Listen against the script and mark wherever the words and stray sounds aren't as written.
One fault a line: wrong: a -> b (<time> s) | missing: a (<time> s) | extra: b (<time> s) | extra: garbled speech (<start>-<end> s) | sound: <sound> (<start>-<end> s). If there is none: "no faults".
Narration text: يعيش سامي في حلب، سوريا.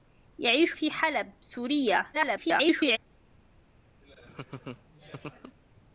missing: سامي (0.8 s)
extra: garbled speech (2.1-3.0 s)
sound: laugh (4.0-5.6 s)